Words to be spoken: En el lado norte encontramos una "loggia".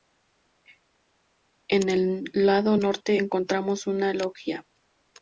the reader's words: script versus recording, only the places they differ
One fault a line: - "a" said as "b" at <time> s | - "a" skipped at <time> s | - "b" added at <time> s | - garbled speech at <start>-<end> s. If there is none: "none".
none